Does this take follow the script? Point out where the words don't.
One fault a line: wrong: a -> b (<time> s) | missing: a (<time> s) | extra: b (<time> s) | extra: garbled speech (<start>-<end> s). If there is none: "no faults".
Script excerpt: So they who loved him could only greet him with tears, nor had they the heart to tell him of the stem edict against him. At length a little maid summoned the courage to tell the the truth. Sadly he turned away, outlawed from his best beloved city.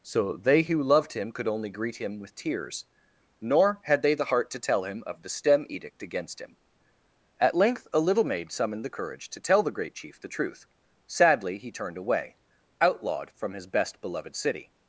extra: great chief (9.7 s)